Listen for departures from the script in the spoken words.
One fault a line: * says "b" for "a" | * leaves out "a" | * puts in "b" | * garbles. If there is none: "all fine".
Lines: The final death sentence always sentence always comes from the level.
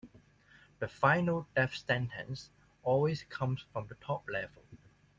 * leaves out "sentence always"
* puts in "top"